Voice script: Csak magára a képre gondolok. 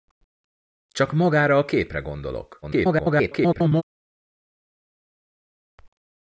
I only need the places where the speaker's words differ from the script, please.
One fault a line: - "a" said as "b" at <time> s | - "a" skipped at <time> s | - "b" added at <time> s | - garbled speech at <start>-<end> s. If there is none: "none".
- garbled speech at 2.6-3.8 s